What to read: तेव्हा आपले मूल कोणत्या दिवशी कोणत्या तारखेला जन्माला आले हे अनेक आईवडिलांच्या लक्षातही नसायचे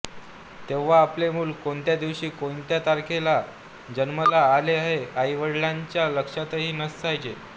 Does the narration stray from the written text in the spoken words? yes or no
yes